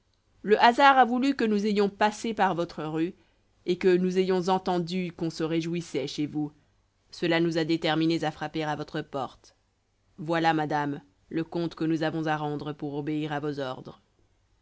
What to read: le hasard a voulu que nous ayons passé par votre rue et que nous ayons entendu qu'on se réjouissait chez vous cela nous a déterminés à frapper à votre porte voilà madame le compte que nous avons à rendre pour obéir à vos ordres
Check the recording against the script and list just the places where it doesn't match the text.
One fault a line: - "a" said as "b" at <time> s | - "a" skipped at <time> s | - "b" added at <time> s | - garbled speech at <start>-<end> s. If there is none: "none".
none